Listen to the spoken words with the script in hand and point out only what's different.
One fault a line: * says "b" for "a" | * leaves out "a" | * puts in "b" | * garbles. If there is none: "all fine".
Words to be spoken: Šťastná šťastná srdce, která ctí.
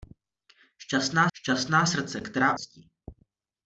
all fine